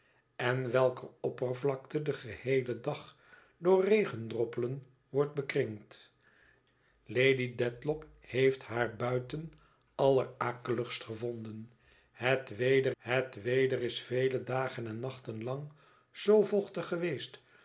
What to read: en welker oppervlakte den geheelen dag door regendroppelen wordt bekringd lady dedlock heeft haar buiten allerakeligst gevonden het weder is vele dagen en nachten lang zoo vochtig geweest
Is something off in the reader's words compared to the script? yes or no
yes